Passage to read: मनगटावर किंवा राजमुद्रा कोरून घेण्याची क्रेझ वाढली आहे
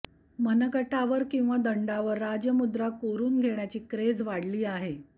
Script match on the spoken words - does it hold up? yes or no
no